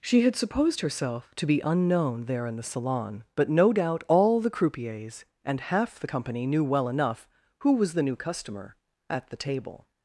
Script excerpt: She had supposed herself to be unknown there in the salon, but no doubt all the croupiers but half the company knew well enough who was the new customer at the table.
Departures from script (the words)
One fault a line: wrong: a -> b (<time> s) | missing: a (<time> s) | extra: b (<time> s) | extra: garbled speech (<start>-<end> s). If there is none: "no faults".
wrong: but -> and (5.4 s)